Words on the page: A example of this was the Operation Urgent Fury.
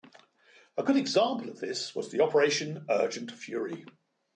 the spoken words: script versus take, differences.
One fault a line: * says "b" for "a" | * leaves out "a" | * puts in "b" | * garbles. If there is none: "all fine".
* puts in "good"